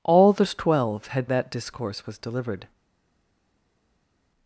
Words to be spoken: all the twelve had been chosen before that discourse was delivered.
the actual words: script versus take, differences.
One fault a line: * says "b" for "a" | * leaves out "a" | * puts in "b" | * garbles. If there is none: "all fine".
* leaves out "been chosen before"